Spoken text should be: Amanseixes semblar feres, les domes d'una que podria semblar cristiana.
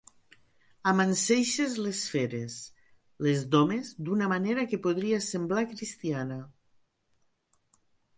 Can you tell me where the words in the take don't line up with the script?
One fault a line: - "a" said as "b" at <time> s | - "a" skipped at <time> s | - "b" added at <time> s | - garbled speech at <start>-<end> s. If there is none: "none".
- "semblar" said as "les" at 1.9 s
- "manera" added at 4.3 s